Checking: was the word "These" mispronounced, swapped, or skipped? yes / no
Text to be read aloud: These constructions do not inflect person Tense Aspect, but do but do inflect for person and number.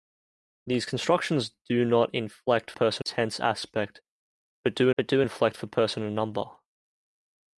no